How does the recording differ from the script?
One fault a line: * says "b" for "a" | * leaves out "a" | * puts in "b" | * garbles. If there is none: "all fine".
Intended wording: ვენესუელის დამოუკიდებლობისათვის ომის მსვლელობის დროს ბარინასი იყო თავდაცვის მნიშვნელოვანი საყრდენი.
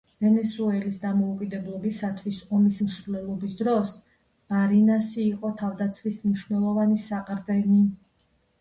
all fine